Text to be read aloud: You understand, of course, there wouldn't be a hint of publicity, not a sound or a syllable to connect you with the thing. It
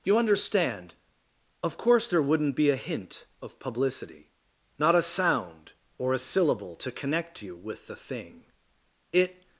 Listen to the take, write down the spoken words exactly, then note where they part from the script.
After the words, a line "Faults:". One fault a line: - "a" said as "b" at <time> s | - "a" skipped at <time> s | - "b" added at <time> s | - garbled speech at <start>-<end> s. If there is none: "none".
You understand, of course, there wouldn't be a hint of publicity, not a sound or a syllable to connect you with the thing. It
Faults:
none